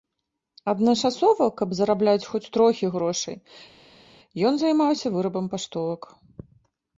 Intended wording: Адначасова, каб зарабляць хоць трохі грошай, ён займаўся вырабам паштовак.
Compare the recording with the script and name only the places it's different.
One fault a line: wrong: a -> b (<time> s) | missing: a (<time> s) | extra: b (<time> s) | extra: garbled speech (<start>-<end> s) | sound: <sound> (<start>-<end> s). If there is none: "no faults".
no faults